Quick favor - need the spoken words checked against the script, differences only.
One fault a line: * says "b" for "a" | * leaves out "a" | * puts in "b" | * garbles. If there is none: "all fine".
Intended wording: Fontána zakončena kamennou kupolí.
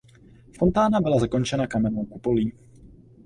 * puts in "byla"